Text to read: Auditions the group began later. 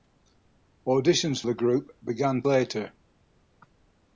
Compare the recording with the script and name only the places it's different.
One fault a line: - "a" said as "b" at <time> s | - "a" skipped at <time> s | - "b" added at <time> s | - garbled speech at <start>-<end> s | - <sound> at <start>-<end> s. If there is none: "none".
none